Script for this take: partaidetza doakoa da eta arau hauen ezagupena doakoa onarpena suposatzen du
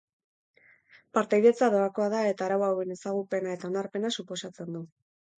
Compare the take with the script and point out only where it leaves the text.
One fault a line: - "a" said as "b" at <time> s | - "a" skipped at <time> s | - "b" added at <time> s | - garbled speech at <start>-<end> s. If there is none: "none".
- "doakoa" said as "eta" at 3.6 s